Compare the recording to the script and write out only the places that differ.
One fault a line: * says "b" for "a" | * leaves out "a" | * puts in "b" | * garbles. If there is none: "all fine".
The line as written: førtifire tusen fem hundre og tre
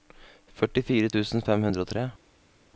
all fine